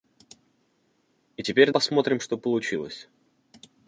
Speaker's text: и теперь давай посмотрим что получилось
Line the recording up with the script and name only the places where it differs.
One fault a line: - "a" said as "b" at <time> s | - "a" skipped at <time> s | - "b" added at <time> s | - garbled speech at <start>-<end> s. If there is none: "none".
- "давай" skipped at 1.7 s